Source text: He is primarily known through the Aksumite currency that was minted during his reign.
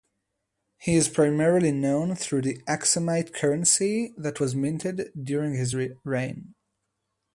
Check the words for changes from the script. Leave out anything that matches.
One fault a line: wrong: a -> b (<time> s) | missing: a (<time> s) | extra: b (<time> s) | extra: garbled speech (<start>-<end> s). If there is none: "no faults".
no faults